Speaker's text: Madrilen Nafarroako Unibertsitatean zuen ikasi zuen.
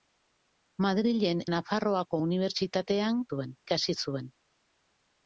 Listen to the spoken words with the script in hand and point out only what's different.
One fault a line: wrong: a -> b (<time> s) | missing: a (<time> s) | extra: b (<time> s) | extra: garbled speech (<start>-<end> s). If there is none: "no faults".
no faults